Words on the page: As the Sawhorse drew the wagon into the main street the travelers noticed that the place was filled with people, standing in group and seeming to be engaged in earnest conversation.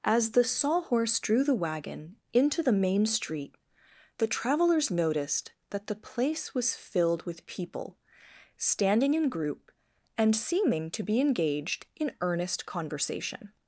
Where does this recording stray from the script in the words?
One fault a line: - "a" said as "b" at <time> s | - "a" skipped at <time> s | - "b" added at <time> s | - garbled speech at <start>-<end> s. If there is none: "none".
none